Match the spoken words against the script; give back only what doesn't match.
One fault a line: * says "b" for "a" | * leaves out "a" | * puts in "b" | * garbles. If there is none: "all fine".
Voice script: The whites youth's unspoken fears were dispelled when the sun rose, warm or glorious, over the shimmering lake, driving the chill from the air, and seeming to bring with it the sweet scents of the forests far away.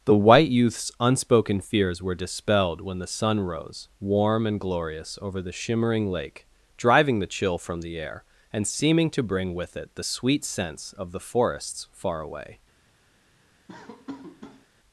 * says "white" for "whites"
* says "and" for "or"